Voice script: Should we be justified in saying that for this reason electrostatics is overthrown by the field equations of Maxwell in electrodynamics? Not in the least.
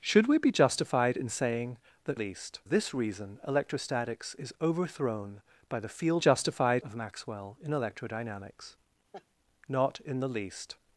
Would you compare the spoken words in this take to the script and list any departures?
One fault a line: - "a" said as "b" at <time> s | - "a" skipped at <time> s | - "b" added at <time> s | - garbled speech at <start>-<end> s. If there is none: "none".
- "for" said as "least" at 2.1 s
- "equations" said as "justified" at 6.2 s